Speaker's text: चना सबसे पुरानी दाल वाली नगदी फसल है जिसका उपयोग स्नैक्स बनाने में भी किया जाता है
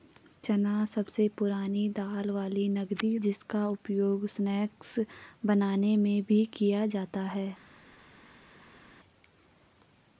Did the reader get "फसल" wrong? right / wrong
wrong